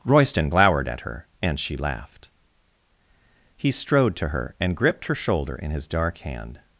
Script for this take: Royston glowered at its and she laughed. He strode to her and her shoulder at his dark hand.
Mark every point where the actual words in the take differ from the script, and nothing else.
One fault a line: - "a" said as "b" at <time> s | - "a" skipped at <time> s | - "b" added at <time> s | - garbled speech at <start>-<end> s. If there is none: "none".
- "its" said as "her" at 1.0 s
- "gripped" added at 4.8 s
- "at" said as "in" at 5.6 s